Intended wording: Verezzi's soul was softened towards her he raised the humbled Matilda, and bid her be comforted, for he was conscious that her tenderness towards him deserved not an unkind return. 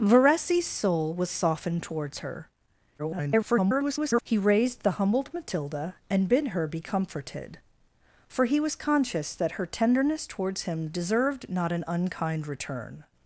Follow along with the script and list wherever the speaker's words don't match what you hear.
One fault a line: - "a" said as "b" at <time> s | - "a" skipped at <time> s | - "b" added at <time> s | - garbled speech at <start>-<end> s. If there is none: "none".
- garbled speech at 3.0-4.2 s